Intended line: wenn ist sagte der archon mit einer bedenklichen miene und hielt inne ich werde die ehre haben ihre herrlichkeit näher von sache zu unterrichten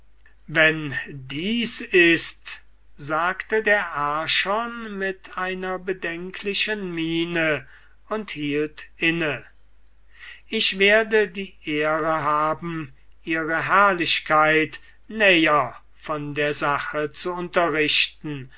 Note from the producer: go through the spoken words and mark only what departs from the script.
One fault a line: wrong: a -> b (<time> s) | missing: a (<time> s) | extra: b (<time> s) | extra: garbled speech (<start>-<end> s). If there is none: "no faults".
extra: dies (1.1 s)
extra: der (16.3 s)